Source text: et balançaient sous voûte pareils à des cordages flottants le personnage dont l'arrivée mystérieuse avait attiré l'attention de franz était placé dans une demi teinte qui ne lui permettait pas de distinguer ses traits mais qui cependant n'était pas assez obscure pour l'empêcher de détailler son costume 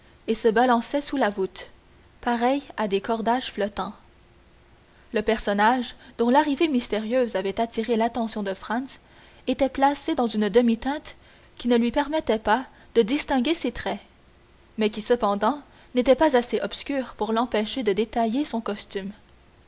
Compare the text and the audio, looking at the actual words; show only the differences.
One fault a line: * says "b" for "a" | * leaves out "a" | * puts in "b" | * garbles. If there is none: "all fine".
* puts in "se"
* puts in "la"